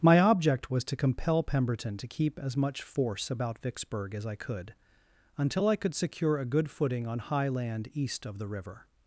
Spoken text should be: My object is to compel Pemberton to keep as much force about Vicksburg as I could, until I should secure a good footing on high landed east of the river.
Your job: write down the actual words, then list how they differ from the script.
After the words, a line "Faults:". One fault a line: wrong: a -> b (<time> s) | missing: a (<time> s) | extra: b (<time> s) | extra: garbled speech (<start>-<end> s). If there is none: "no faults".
My object was to compel Pemberton to keep as much force about Vicksburg as I could, until I could secure a good footing on high land east of the river.
Faults:
wrong: is -> was (0.7 s)
wrong: should -> could (5.8 s)
wrong: landed -> land (7.5 s)